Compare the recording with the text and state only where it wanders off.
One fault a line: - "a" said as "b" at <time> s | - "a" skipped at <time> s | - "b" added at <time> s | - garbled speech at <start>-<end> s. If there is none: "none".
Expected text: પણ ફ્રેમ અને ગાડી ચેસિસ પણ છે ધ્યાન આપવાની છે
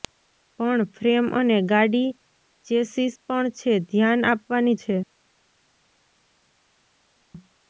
none